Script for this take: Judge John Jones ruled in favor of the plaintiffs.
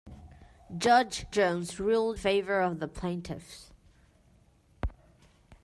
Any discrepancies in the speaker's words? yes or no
yes